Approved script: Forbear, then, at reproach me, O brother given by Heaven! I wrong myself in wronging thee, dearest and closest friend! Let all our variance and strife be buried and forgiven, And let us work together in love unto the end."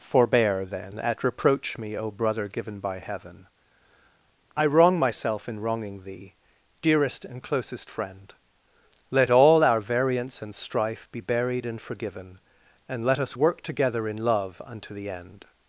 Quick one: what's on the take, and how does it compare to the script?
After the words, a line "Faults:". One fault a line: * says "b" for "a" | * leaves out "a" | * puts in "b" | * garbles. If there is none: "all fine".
Forbear, then, at reproach me, O brother given by Heaven! I wrong myself in wronging thee, dearest and closest friend! Let all our variance and strife be buried and forgiven, And let us work together in love unto the end."
Faults:
all fine